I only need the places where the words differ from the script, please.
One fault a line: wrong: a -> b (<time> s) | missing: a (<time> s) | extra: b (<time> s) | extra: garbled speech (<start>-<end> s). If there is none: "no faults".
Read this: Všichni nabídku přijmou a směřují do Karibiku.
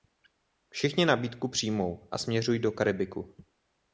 no faults